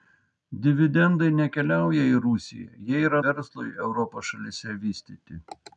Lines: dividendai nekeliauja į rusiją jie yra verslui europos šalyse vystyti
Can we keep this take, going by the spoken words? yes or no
yes